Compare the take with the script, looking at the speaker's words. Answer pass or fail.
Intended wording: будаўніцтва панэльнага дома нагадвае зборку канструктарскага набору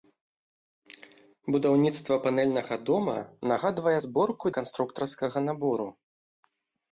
pass